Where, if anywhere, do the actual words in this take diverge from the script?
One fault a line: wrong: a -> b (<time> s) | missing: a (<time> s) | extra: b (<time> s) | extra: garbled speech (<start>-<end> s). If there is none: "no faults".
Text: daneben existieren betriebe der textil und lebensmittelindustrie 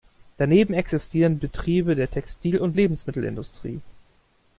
no faults